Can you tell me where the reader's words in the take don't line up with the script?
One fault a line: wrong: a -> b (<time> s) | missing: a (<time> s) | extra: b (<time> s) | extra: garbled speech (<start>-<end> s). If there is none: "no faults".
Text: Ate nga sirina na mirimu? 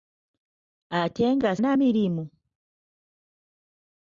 missing: sirina (1.5 s)